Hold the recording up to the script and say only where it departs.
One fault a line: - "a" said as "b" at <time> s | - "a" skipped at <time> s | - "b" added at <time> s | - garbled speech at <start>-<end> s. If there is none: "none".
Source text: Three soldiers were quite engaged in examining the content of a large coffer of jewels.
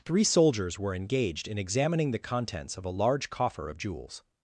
- "quite" skipped at 0.9 s
- "content" said as "contents" at 2.2 s